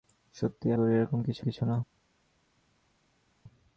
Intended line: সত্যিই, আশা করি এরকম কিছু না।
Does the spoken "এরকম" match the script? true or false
true